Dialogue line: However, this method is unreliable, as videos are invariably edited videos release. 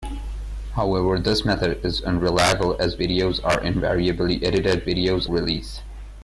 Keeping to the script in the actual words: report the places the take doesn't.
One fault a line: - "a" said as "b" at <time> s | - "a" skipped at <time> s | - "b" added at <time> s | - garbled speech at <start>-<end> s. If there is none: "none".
none